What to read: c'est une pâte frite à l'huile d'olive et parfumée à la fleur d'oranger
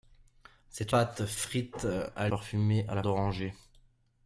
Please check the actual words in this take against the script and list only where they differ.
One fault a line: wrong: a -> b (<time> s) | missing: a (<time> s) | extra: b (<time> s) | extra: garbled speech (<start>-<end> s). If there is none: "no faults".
missing: une (0.9 s)
missing: l'huile d'olive et (2.3 s)
missing: fleur (3.0 s)